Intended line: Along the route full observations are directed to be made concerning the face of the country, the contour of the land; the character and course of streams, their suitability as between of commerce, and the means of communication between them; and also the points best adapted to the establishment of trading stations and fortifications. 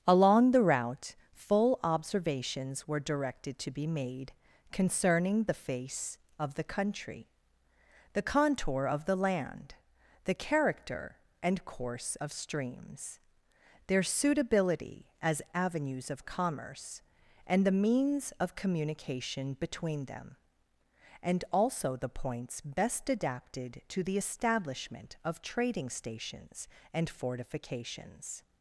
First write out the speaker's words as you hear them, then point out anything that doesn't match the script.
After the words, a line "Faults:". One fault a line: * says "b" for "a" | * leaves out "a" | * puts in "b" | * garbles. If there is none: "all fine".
Along the route full observations were directed to be made concerning the face of the country, the contour of the land; the character and course of streams, their suitability as avenues of commerce, and the means of communication between them; and also the points best adapted to the establishment of trading stations and fortifications.
Faults:
* says "were" for "are"
* says "avenues" for "between"